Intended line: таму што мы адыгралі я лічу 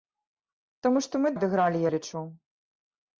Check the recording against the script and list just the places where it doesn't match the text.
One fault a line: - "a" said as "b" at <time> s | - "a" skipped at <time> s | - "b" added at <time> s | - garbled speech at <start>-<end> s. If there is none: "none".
none